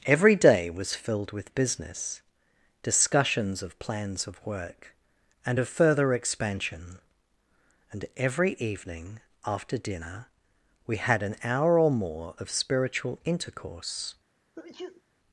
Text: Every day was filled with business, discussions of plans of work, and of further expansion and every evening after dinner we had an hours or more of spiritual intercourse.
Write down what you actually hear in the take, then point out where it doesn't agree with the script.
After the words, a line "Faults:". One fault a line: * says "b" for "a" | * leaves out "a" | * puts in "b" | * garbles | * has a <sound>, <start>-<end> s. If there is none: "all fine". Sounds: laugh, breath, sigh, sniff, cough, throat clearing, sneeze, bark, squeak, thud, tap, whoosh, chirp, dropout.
Every day was filled with business, discussions of plans of work, and of further expansion and every evening after dinner we had an hour or more of spiritual intercourse.
Faults:
* says "hour" for "hours"
* has a sneeze, 14.6-15.0 s